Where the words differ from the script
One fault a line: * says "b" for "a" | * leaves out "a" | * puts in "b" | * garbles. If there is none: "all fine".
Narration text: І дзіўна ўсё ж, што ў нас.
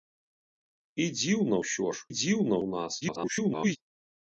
* says "дзіўна" for "што"
* garbles